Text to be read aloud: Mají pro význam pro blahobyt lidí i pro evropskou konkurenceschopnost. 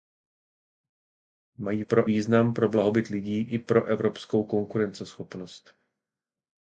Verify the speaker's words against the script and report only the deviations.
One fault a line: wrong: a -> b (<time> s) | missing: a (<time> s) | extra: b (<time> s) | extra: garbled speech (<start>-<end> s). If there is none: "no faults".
no faults